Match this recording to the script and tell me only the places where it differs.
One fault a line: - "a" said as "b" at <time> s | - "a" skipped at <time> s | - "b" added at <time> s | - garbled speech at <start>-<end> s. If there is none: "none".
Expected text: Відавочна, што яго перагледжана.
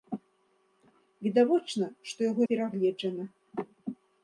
none